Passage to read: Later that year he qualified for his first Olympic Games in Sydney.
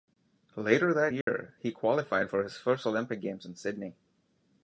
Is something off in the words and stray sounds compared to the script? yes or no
yes